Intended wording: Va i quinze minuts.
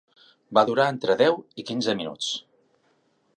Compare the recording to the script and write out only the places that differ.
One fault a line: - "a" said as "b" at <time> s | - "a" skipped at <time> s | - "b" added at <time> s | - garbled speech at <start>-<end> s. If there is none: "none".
- "durar entre deu" added at 0.7 s